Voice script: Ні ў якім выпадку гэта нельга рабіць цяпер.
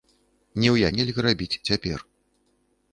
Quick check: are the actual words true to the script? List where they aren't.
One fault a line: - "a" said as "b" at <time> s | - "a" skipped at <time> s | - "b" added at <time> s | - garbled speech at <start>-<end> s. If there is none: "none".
- "якім выпадку гэта" skipped at 0.9 s